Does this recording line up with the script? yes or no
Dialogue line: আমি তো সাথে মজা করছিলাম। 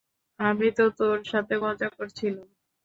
no